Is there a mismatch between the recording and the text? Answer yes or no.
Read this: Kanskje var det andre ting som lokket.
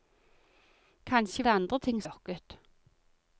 yes